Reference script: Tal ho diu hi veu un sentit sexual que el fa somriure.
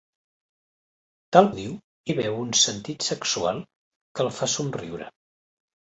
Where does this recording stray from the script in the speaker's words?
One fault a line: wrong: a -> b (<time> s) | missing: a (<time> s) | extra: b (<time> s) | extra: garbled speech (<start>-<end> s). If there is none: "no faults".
no faults